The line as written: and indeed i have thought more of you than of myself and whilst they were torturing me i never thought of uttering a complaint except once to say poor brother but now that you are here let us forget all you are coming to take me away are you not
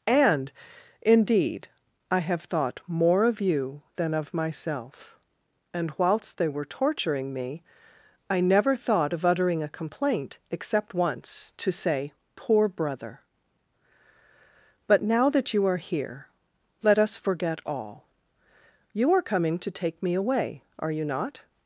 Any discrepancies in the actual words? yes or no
no